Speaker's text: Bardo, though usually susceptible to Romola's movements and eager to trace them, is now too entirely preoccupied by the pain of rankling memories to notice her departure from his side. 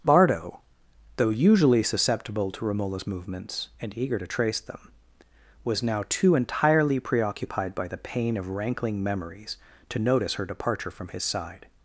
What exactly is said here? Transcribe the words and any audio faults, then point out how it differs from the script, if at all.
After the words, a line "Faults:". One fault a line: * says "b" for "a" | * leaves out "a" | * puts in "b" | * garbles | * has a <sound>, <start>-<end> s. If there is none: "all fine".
Bardo, though usually susceptible to Romola's movements and eager to trace them, was now too entirely preoccupied by the pain of rankling memories to notice her departure from his side.
Faults:
* says "was" for "is"